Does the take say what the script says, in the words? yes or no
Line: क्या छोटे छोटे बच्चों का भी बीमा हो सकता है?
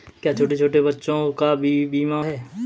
no